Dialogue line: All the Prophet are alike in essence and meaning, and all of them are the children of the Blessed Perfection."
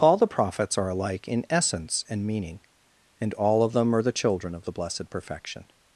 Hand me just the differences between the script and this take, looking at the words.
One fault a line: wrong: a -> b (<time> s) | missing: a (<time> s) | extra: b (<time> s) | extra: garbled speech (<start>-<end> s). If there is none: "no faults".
wrong: Prophet -> Prophets (0.2 s)